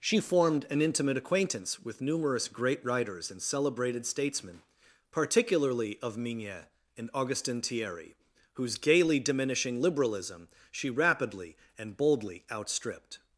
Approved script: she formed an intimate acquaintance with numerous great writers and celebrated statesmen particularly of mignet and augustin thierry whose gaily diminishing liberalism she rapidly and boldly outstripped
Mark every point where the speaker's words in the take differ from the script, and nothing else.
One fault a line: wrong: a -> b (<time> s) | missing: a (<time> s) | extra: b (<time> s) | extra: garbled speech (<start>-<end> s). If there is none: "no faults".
no faults